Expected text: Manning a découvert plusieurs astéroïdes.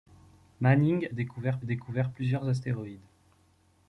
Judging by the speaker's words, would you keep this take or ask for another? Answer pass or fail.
fail